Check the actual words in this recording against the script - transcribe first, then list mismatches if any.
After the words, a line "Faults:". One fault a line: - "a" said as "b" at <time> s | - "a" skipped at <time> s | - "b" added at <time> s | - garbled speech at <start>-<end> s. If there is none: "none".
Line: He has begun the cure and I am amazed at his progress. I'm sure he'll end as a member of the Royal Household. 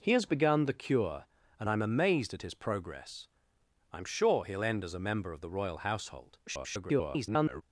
He has begun the cure and I am amazed at his progress. I'm sure he'll end as a member of the Royal Household. [garbled]
Faults:
- garbled speech at 6.5-7.6 s